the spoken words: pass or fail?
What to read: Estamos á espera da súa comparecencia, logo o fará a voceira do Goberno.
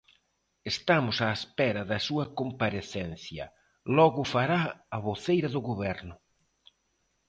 pass